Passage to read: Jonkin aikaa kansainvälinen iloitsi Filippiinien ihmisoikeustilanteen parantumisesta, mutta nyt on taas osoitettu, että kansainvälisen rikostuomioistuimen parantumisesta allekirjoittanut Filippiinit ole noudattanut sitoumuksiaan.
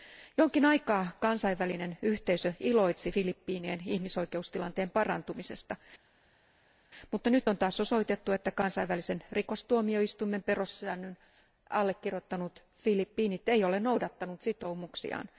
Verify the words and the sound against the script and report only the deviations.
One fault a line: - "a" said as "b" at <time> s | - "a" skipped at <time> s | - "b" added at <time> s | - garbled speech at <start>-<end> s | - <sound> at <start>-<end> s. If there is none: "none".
- "yhteisö" added at 2.0 s
- "parantumisesta" said as "perussäännön" at 10.4 s
- "ei" added at 13.5 s